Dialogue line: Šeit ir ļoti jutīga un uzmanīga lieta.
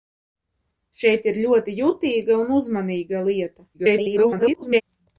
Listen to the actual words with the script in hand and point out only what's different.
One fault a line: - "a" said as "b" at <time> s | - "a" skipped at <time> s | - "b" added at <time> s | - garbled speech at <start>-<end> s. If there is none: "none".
- garbled speech at 3.7-4.8 s